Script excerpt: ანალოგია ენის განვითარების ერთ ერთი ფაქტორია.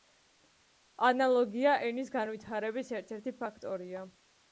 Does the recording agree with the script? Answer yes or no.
yes